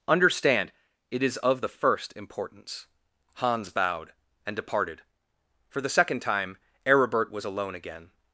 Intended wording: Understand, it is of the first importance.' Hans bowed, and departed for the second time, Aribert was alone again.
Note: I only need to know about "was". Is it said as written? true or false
true